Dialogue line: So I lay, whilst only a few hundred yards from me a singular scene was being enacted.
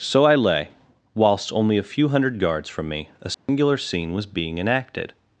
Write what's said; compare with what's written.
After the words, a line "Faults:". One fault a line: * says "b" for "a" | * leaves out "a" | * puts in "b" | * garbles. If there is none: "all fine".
So I lay, whilst only a few hundred yards from me a singular scene was being enacted.
Faults:
all fine